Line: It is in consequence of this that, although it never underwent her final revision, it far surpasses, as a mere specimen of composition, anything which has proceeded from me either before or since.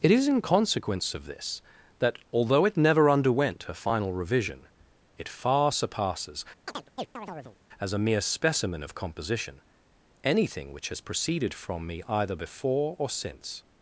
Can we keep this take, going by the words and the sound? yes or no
no